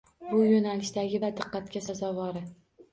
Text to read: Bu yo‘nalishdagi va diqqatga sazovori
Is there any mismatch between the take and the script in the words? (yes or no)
no